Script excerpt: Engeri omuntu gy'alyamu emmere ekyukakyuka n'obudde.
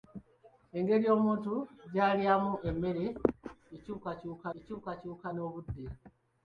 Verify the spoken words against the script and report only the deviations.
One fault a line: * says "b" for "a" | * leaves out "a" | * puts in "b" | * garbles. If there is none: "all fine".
* puts in "ekyukakyuka"